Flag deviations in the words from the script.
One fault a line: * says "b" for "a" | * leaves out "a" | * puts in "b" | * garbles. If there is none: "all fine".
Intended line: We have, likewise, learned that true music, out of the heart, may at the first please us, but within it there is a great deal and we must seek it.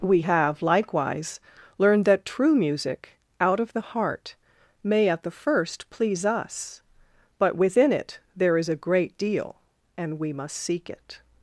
all fine